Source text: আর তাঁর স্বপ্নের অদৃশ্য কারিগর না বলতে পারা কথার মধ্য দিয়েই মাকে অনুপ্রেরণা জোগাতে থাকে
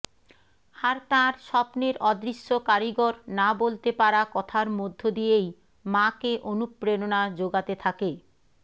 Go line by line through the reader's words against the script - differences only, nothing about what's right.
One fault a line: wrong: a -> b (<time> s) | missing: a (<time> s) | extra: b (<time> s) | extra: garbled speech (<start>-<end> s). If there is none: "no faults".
no faults